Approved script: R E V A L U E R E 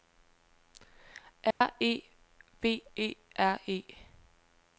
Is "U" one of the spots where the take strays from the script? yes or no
yes